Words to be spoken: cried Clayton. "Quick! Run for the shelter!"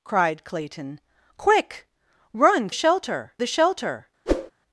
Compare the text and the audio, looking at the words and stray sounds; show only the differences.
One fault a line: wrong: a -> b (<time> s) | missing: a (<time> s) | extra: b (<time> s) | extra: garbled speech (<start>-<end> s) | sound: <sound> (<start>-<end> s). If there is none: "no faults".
wrong: for -> shelter (2.7 s)
sound: whoosh (4.3-4.5 s)